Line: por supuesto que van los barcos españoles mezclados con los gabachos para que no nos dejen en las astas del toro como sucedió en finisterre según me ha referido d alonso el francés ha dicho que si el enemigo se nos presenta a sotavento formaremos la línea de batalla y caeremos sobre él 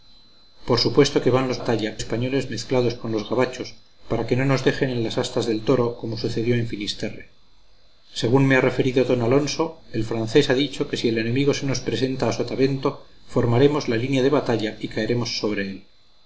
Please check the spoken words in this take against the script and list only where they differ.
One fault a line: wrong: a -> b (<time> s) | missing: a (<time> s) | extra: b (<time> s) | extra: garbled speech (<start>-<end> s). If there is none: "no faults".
wrong: barcos -> batalla (1.6 s)